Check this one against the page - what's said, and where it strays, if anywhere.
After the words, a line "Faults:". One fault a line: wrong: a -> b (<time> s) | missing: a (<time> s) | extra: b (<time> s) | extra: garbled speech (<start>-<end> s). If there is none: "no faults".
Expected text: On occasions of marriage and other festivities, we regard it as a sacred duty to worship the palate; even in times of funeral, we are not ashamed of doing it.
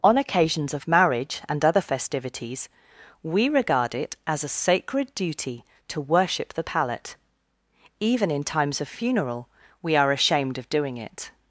On occasions of marriage and other festivities, we regard it as a sacred duty to worship the palate; even in times of funeral, we are ashamed of doing it.
Faults:
missing: not (10.1 s)